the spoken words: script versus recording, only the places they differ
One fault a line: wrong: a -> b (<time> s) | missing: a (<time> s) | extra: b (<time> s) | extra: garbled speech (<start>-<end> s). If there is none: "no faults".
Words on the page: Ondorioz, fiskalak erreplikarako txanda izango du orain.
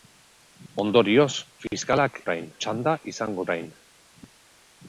wrong: erreplikarako -> orain (2.3 s)
missing: du (3.5 s)